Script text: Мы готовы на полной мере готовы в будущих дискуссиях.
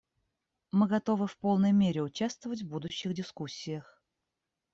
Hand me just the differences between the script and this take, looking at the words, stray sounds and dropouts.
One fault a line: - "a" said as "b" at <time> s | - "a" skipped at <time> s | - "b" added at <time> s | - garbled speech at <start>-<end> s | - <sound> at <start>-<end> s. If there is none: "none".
- "на" said as "в" at 1.3 s
- "готовы" said as "участвовать" at 2.0 s